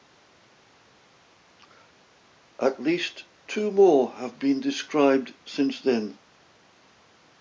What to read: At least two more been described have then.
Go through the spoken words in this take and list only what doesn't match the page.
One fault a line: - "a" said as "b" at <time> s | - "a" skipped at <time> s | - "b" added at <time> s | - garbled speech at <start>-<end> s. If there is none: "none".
- "have" added at 4.1 s
- "have" said as "since" at 5.5 s